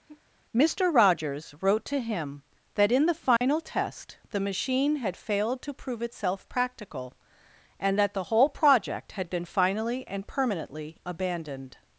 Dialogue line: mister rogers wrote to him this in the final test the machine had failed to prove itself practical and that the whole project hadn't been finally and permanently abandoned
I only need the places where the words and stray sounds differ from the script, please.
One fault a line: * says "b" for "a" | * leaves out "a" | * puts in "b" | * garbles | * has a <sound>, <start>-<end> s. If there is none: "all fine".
* has a sigh, 0.1-0.2 s
* says "that" for "this"
* has a dropout, 3.4-3.4 s
* says "had" for "hadn't"